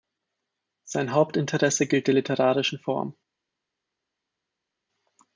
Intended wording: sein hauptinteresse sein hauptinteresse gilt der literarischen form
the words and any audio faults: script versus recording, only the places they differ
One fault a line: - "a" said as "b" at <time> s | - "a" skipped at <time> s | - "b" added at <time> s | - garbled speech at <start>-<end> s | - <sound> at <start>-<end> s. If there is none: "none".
- "sein hauptinteresse" skipped at 1.9 s